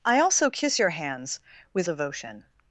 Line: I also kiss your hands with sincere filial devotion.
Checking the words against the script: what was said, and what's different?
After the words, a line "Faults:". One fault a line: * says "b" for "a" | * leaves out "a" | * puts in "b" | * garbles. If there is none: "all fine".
I also kiss your hands with devotion.
Faults:
* leaves out "sincere filial"